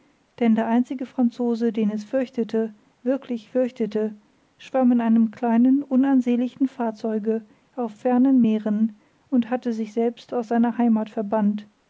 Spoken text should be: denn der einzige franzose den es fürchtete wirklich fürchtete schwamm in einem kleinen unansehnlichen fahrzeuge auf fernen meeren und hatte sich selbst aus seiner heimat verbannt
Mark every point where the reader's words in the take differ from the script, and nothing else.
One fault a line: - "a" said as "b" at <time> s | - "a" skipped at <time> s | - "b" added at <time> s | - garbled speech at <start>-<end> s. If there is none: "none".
none